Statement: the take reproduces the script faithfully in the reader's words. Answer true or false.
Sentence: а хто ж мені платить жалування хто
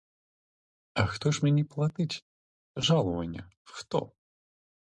true